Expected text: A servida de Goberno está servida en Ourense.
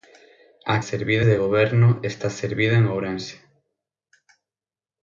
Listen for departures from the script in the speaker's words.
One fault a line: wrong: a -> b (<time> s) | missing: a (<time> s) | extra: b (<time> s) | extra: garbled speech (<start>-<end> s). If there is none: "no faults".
no faults